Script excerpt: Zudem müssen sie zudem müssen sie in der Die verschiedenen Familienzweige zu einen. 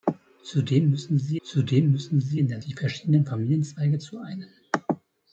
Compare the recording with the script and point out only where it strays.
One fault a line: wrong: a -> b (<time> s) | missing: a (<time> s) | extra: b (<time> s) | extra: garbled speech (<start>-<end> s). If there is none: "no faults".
no faults